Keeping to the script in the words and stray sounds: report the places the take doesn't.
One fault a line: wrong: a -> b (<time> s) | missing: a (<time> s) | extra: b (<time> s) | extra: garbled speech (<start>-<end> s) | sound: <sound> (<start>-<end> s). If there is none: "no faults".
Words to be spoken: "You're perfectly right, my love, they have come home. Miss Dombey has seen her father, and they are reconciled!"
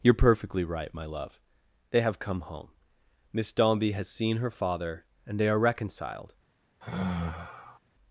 sound: sigh (6.8-7.8 s)